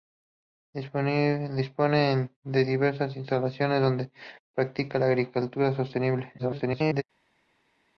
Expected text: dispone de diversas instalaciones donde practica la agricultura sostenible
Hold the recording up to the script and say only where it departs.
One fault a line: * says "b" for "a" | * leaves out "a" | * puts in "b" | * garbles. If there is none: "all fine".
* garbles